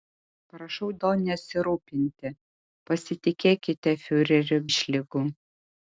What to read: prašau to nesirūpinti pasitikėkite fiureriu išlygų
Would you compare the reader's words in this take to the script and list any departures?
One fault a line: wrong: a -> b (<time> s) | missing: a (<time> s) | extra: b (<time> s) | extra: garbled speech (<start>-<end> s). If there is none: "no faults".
no faults